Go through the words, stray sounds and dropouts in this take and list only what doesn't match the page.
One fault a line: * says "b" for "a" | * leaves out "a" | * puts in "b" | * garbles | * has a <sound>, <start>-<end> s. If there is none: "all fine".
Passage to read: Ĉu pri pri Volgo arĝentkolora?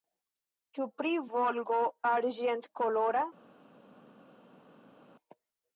* leaves out "pri"